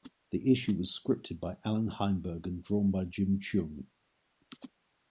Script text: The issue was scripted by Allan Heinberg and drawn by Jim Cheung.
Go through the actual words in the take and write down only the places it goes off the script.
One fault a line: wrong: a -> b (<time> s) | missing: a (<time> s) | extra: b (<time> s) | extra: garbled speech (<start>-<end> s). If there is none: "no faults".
no faults